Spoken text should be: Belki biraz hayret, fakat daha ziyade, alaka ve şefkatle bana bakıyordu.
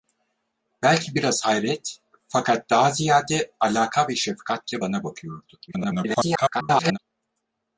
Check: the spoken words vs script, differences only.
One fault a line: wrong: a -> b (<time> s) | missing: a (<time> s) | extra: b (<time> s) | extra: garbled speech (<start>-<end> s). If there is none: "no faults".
extra: garbled speech (5.7-7.0 s)